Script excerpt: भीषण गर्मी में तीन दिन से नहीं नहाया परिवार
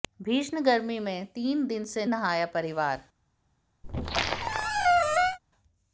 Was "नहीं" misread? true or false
true